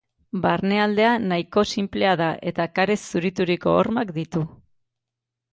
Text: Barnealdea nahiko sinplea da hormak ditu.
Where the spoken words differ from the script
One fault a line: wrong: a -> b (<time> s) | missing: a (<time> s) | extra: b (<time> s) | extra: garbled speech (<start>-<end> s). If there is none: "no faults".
extra: eta karez zurituriko (2.5 s)